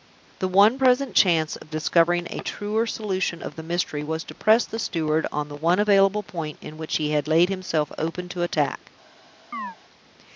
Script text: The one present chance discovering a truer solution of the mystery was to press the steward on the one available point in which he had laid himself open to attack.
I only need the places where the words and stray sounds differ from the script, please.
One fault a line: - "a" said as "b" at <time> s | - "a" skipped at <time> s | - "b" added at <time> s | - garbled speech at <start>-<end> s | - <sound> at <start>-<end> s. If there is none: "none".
- "of" added at 1.5 s
- chirp at 9.5-9.8 s